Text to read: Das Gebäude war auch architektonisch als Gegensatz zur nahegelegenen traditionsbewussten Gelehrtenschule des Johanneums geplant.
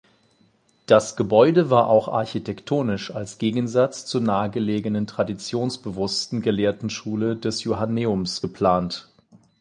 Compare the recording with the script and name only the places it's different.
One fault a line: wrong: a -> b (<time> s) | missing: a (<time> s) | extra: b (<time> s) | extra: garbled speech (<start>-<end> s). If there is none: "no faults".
no faults